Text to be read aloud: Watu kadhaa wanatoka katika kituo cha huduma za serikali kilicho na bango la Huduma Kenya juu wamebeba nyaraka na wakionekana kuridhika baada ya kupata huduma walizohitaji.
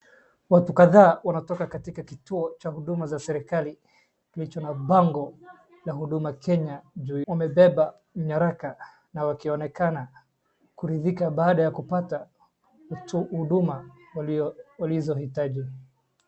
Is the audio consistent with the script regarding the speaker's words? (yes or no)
yes